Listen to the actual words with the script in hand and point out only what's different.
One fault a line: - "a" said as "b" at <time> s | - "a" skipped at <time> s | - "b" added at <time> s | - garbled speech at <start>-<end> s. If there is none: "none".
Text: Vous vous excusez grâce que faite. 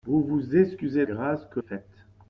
none